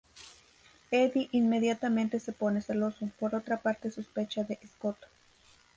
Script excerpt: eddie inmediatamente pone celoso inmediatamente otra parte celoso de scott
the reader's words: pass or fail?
fail